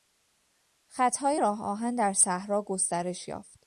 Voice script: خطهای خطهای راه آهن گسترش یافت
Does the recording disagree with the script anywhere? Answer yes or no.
yes